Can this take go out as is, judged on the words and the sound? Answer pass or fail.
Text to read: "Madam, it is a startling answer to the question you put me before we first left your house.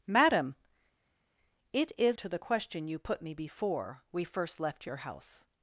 fail